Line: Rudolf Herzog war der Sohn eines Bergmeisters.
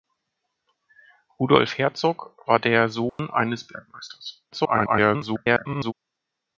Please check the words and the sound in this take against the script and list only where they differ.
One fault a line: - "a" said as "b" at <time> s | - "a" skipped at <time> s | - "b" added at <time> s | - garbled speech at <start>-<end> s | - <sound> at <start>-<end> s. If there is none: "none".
- dropout at 3.1-3.2 s
- garbled speech at 4.5-5.9 s